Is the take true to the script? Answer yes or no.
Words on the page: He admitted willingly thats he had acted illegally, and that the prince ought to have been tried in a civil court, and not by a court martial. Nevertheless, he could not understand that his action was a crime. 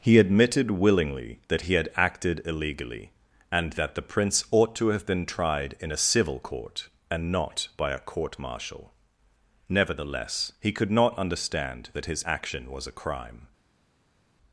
no